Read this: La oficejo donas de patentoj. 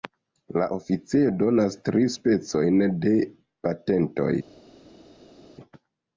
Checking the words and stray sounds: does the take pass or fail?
fail